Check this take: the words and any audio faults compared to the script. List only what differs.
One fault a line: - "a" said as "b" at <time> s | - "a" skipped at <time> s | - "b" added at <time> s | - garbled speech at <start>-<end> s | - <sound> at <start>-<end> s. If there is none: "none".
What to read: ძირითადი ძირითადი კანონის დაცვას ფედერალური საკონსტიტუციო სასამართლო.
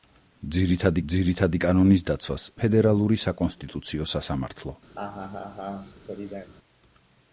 - laugh at 5.0-6.5 s